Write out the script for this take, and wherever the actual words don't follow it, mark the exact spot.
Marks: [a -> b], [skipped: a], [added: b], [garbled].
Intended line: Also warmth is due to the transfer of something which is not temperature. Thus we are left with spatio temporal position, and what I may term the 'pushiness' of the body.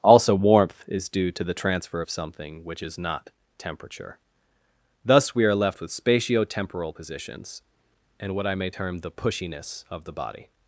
Also warmth is due to the transfer of something which is not temperature. Thus we are left with spatio temporal [position, -> positions] and what I may term the 'pushiness' of the body.